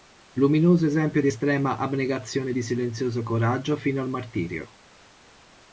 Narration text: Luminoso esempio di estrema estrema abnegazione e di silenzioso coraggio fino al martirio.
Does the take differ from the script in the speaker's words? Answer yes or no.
yes